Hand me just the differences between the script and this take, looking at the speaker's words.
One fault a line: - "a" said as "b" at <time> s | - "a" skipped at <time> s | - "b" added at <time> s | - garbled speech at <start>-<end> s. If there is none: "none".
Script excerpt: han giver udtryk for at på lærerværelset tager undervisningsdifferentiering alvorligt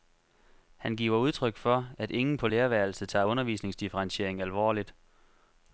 - "ingen" added at 2.1 s